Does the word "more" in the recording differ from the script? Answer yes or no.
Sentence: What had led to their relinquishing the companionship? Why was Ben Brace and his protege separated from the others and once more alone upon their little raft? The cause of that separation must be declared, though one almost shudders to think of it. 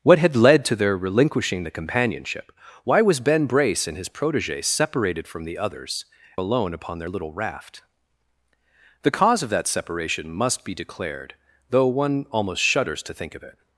yes